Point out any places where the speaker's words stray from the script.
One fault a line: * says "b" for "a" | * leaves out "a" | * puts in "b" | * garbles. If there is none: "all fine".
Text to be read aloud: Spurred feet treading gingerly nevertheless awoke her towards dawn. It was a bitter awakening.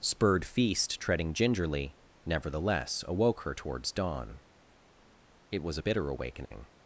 * says "feast" for "feet"